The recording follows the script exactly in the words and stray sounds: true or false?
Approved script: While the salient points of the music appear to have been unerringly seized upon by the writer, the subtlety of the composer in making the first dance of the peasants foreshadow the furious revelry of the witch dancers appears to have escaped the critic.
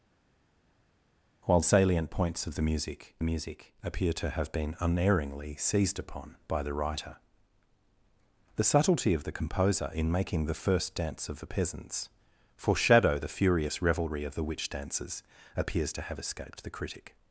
false